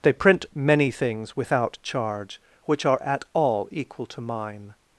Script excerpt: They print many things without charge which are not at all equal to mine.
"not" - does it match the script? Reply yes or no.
no